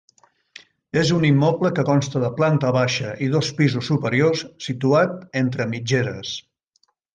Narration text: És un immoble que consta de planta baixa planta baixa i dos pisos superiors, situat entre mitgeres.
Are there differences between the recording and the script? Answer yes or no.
yes